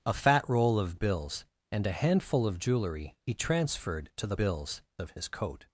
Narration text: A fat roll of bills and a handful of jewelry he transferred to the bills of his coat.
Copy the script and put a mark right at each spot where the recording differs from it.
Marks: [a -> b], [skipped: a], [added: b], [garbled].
A fat roll of bills and a handful of jewelry he transferred to the bills of his coat.